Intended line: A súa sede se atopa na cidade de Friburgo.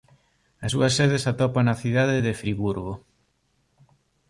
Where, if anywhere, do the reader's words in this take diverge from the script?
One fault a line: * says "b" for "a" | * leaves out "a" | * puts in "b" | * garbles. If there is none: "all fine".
all fine